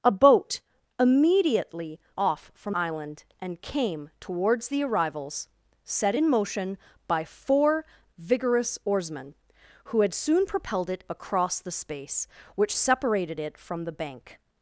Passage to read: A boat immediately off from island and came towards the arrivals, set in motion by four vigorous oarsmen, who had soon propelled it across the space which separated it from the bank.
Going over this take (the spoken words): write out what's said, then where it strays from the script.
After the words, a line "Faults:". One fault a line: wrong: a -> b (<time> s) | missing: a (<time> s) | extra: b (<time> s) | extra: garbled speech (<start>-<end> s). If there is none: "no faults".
A boat immediately off from island and came towards the arrivals, set in motion by four vigorous oarsmen, who had soon propelled it across the space which separated it from the bank.
Faults:
no faults